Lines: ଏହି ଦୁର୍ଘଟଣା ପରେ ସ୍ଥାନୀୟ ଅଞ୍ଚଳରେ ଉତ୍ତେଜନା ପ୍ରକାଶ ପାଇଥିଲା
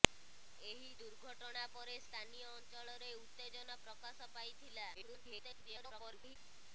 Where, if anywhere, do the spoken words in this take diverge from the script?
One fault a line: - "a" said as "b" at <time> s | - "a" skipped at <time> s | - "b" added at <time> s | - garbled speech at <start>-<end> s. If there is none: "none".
- garbled speech at 4.9-6.4 s